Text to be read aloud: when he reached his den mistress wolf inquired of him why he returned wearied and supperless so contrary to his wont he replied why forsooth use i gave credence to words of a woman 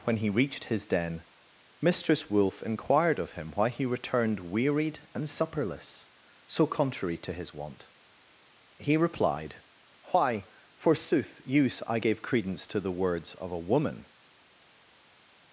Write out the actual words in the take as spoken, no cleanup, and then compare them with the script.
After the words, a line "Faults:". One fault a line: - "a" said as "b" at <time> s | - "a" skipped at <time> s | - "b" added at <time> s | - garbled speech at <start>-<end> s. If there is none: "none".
when he reached his den mistress wolf inquired of him why he returned wearied and supperless so contrary to his wont he replied why forsooth use i gave credence to the words of a woman
Faults:
- "the" added at 12.8 s